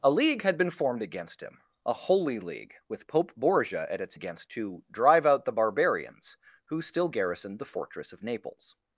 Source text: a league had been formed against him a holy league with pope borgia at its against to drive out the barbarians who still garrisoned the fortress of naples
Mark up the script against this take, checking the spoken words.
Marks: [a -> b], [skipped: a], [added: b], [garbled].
a league had been formed against him a holy league with pope borgia at its against to drive out the barbarians who still garrisoned the fortress of naples